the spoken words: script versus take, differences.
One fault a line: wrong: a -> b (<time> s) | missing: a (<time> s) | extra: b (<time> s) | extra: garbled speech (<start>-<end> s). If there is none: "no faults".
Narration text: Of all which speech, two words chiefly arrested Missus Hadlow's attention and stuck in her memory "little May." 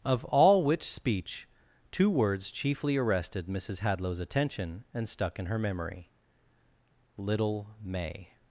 no faults